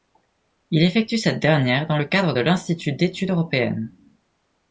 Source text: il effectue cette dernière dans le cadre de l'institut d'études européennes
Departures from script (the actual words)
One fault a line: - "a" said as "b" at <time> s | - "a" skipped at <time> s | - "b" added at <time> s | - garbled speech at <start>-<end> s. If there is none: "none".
none